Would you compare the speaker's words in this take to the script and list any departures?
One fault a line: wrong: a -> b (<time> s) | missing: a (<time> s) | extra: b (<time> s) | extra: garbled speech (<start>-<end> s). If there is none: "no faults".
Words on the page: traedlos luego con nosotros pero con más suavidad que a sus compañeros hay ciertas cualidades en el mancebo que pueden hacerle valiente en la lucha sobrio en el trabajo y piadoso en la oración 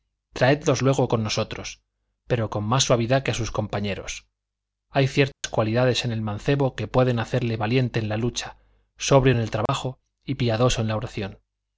no faults